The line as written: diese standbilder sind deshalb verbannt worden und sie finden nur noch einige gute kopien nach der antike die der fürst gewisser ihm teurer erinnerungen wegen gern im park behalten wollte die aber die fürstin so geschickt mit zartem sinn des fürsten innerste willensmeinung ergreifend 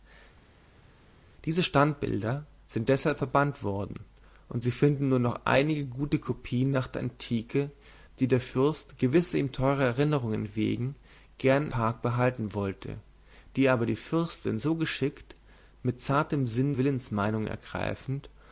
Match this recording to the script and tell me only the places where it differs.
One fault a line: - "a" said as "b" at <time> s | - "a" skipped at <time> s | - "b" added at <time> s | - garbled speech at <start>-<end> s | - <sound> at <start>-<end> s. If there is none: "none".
- "im" skipped at 11.7 s
- "des fürsten innerste" skipped at 16.7 s